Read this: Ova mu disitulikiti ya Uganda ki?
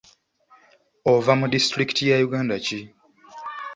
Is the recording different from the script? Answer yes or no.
no